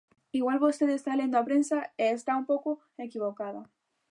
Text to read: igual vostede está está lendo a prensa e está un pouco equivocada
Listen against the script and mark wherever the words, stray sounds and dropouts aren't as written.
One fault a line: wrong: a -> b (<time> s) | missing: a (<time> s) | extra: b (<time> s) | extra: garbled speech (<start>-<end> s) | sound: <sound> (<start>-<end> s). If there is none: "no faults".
missing: está (1.1 s)